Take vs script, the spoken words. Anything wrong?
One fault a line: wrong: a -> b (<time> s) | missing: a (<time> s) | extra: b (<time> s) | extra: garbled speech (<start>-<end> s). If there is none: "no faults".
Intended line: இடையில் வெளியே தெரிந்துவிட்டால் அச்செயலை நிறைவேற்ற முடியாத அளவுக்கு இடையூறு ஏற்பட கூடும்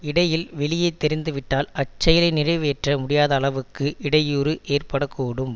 no faults